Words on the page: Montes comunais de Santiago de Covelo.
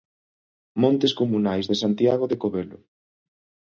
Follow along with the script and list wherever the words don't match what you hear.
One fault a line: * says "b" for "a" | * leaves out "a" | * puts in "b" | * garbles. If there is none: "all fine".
all fine